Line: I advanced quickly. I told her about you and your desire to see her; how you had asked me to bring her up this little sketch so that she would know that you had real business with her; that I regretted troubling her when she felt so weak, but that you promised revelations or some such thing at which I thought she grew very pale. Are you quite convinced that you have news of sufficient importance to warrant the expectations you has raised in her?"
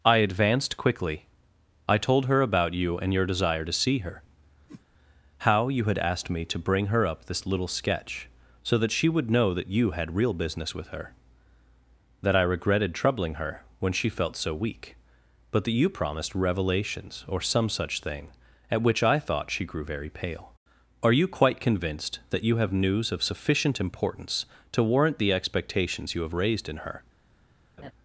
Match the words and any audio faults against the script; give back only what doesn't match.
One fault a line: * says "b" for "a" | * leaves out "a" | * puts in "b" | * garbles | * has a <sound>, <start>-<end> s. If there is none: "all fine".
* has a whoosh, 4.7-4.8 s
* says "have" for "has"
* has a laugh, 27.8-27.9 s